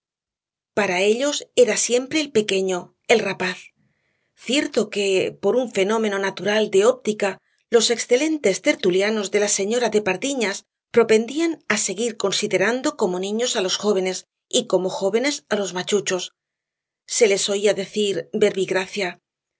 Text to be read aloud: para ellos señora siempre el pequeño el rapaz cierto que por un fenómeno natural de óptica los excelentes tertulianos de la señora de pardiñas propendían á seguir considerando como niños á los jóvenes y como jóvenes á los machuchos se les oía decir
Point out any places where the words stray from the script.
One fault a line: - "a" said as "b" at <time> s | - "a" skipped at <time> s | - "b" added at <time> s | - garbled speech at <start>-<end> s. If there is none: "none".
- "señora" said as "era" at 1.6 s